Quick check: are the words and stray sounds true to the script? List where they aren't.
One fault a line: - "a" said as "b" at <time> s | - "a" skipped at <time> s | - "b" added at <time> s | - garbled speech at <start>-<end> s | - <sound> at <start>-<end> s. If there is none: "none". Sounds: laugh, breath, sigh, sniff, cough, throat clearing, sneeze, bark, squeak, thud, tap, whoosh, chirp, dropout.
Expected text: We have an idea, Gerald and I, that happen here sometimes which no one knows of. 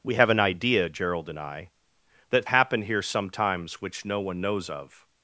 none